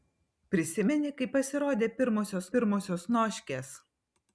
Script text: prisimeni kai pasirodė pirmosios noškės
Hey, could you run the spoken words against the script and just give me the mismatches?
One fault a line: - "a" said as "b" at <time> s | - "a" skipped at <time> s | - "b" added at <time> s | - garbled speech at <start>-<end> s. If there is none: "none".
- "pirmosios" added at 2.5 s